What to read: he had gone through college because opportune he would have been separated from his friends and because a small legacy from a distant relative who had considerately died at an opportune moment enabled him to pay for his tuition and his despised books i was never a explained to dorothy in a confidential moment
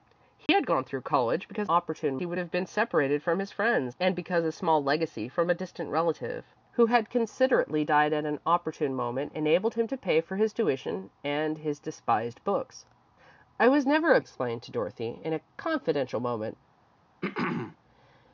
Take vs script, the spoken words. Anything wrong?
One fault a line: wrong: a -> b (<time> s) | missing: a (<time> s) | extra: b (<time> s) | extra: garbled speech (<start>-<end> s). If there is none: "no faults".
no faults